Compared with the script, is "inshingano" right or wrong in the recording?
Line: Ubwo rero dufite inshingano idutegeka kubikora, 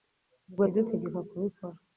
wrong